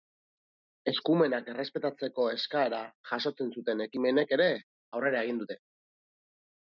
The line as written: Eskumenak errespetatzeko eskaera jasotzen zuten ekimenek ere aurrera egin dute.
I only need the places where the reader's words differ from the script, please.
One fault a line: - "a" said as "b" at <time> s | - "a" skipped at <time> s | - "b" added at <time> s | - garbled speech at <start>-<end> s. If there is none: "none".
none